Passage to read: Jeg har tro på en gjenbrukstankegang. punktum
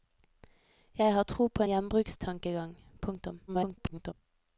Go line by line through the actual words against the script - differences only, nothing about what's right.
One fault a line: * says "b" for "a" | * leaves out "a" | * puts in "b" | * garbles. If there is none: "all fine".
* leaves out "en"
* garbles